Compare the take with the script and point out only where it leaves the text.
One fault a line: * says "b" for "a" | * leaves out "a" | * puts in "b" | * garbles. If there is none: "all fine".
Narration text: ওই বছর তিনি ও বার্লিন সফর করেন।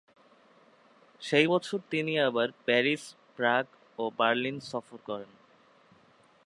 * says "সেই" for "ওই"
* puts in "আবার প্যারিস প্রাগ"